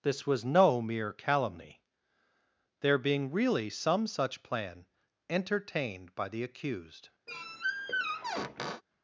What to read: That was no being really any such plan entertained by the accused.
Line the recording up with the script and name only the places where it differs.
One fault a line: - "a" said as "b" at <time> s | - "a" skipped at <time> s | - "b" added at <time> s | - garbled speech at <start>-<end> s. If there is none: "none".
- "That" said as "This" at 0.0 s
- "mere calumny there" added at 0.8 s
- "any" said as "some" at 3.7 s